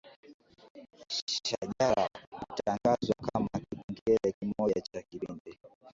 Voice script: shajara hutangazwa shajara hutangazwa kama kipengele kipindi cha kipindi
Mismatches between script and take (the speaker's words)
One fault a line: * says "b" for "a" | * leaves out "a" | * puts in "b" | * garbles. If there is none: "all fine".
* leaves out "shajara hutangazwa"
* says "kimoja" for "kipindi"